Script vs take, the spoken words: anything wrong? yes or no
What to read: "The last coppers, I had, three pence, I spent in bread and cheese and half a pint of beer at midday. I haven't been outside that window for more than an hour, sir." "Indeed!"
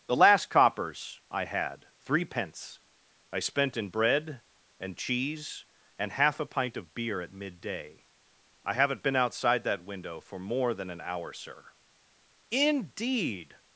no